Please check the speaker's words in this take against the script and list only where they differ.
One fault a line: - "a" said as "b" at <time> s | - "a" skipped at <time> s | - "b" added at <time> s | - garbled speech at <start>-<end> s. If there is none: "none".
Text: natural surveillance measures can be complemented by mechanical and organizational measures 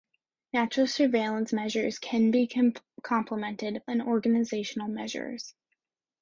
- "by mechanical" skipped at 3.8 s